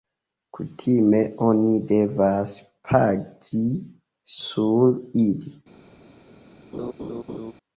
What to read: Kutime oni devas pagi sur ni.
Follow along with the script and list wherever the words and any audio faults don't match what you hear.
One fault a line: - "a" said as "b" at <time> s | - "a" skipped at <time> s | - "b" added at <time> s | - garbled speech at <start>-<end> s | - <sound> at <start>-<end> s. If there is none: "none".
- "ni" said as "ili" at 5.3 s
- laugh at 6.7-7.5 s